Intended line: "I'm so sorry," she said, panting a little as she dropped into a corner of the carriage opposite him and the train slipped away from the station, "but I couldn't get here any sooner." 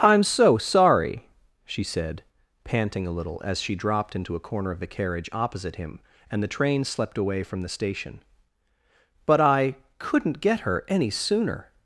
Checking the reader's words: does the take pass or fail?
fail